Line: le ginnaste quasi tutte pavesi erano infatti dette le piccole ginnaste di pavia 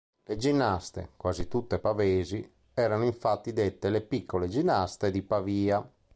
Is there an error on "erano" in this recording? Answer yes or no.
no